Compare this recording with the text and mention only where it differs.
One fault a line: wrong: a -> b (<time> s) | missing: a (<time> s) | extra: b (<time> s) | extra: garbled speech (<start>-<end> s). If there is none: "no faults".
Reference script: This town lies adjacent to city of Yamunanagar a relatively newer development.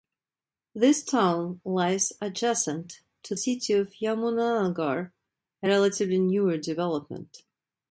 no faults